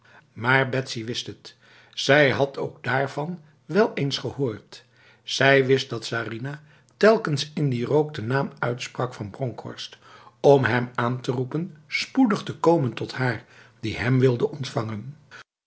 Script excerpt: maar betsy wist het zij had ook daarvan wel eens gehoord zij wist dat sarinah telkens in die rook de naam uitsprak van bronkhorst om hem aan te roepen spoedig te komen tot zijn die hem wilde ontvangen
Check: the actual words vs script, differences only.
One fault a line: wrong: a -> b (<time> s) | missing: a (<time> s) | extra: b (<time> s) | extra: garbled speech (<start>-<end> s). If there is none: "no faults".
wrong: zijn -> haar (13.1 s)